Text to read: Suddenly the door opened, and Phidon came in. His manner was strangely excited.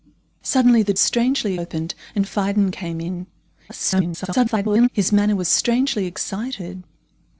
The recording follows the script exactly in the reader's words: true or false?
false